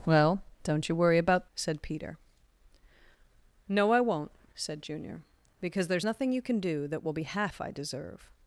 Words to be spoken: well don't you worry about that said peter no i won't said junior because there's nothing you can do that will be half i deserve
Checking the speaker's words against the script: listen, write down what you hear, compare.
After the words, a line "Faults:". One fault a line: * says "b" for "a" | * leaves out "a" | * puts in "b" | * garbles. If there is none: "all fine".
well don't you worry about said peter no i won't said junior because there's nothing you can do that will be half i deserve
Faults:
* leaves out "that"